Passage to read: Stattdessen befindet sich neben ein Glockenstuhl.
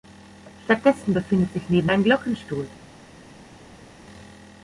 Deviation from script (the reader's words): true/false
false